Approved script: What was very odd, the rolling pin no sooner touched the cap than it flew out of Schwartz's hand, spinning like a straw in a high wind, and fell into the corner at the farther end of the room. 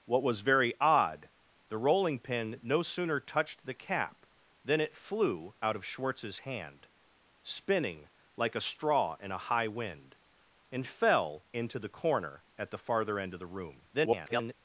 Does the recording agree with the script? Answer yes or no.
no